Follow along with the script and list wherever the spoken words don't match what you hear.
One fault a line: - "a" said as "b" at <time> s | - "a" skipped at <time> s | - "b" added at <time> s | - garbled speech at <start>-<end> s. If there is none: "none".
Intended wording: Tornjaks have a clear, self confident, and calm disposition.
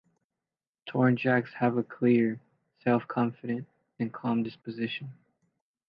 none